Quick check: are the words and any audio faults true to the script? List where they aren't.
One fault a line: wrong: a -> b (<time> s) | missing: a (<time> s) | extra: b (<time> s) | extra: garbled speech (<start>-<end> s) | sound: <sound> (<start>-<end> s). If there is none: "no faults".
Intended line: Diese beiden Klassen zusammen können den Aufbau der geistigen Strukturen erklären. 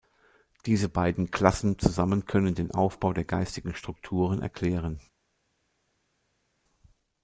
no faults